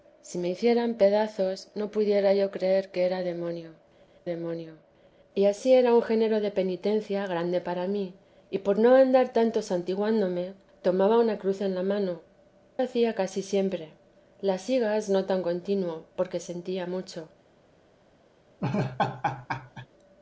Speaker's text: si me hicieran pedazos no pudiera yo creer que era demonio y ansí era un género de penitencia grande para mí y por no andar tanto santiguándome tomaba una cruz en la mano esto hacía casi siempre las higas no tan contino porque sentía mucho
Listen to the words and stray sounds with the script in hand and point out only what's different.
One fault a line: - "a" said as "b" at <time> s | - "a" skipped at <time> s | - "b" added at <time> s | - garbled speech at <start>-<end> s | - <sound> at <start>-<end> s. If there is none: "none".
- "demonio" added at 4.2 s
- "esto" skipped at 12.2 s
- laugh at 18.6-19.9 s